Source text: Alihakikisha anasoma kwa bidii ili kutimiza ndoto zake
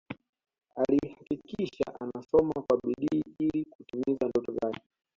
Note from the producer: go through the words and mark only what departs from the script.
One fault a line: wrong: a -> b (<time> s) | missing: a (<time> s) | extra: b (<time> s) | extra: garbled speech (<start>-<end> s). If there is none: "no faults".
no faults